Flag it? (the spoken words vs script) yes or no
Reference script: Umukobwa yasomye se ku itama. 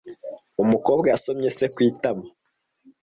no